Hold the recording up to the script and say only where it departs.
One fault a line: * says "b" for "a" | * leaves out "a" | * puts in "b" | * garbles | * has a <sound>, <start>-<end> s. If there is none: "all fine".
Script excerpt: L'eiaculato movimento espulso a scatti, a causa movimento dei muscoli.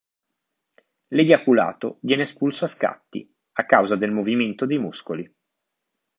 * says "viene" for "movimento"
* puts in "del"